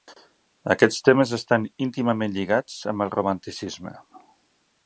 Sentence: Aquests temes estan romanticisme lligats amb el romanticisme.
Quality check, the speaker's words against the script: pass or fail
fail